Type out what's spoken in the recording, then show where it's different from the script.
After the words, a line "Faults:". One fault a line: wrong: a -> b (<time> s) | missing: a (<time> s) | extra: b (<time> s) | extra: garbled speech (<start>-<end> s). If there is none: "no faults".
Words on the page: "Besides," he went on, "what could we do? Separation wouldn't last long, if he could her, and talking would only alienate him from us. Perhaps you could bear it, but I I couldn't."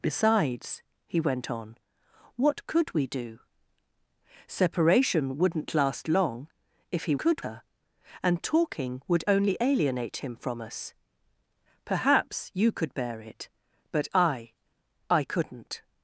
"Besides," he went on, "what could we do? Separation wouldn't last long, if he could her, and talking would only alienate him from us. Perhaps you could bear it, but I I couldn't."
Faults:
no faults